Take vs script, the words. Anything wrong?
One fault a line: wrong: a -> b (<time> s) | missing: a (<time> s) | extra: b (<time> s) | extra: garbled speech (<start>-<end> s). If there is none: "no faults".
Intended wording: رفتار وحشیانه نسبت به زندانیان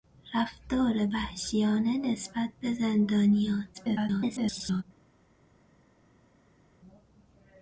extra: garbled speech (3.7-4.8 s)